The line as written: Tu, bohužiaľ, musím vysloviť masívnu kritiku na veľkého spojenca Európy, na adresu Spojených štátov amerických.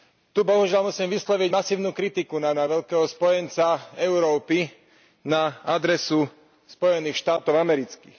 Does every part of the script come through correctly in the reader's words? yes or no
no